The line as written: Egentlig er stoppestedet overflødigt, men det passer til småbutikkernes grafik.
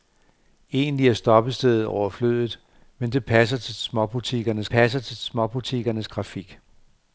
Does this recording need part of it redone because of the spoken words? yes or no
yes